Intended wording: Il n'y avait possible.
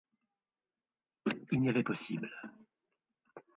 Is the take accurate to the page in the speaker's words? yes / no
yes